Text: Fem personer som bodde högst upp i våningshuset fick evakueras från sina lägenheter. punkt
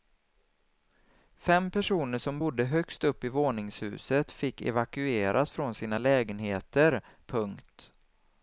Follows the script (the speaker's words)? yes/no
yes